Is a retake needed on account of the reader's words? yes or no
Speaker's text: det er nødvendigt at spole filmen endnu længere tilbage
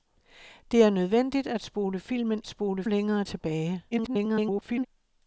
yes